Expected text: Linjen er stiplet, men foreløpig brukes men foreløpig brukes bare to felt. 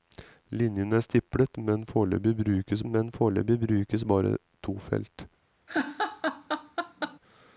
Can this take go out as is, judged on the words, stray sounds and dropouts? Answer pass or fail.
fail